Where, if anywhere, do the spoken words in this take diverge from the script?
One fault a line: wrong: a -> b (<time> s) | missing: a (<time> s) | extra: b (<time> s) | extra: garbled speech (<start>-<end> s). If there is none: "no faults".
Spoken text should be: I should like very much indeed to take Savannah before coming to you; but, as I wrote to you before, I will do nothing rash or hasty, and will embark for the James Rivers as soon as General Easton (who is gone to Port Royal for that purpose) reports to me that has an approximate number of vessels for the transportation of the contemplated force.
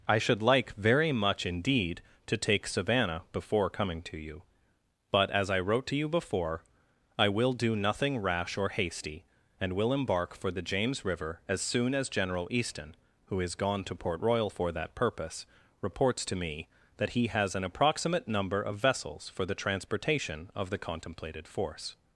wrong: Rivers -> River (11.1 s)
extra: he (17.1 s)